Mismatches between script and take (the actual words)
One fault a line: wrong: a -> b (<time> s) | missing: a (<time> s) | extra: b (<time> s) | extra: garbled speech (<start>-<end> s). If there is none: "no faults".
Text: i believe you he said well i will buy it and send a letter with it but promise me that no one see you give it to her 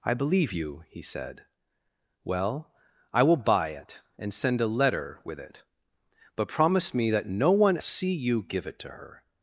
no faults